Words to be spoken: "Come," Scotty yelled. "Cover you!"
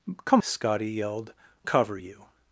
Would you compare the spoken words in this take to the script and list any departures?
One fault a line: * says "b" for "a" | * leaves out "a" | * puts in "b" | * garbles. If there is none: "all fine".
all fine